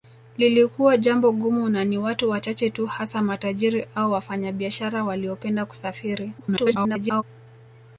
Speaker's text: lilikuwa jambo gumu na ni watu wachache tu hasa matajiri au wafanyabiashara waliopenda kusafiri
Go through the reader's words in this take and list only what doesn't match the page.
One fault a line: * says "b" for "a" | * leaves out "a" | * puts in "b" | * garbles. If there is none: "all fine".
* garbles